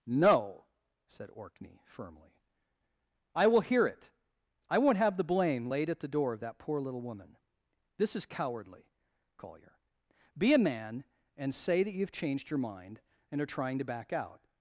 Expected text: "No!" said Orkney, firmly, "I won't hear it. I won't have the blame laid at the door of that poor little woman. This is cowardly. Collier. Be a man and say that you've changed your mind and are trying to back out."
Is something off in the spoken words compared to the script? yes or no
yes